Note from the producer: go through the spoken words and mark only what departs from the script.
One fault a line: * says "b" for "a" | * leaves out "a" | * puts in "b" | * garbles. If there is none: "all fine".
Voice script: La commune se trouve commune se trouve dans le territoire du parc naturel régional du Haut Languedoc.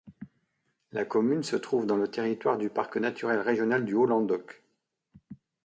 * leaves out "commune se trouve"